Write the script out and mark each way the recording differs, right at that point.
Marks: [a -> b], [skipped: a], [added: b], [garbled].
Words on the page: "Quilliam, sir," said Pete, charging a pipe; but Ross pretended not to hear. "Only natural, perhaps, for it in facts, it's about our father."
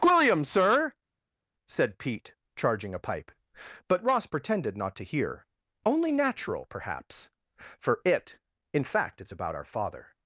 "Quilliam, sir," said Pete, charging a pipe; but Ross pretended not to hear. "Only natural, perhaps, for it in [facts, -> fact] it's about our father."